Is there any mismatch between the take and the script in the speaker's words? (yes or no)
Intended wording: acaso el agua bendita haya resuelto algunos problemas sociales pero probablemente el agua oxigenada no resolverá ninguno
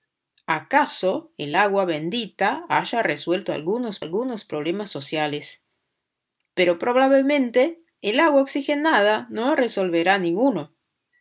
yes